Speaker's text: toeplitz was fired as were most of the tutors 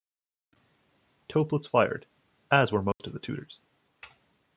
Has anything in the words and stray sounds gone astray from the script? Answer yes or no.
yes